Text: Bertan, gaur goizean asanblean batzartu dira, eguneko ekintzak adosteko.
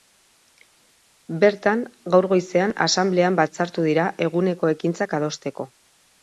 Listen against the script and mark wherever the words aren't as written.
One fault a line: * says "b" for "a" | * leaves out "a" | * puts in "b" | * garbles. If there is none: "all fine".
all fine